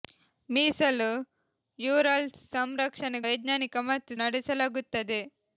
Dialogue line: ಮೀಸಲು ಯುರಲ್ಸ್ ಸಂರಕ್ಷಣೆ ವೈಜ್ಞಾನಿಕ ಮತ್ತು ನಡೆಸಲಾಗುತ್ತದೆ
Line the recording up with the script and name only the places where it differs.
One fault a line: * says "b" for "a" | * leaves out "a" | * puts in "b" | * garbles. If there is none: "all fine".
all fine